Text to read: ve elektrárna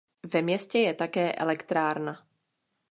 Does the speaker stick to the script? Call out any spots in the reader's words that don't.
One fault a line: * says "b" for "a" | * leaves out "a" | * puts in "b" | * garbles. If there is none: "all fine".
* puts in "městě je také"